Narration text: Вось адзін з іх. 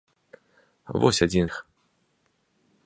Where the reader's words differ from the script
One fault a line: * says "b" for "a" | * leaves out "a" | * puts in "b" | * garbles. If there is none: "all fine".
* leaves out "з"